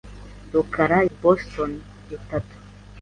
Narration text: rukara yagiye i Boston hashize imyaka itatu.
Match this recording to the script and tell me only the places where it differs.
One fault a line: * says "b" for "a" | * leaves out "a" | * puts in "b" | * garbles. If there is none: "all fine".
* leaves out "yagiye"
* leaves out "hashize imyaka"